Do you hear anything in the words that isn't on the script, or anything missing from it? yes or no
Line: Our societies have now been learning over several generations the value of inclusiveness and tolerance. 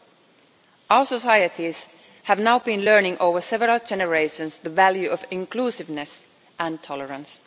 no